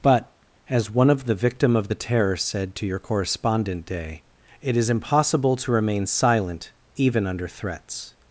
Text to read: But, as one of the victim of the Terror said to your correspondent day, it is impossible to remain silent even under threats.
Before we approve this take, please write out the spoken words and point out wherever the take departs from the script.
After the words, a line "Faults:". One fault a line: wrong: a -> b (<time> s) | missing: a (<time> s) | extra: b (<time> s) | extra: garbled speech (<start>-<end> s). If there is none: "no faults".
But, as one of the victim of the Terror said to your correspondent day, it is impossible to remain silent even under threats.
Faults:
no faults